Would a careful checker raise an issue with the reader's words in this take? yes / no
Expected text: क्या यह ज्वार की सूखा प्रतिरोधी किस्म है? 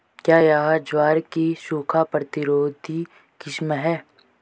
no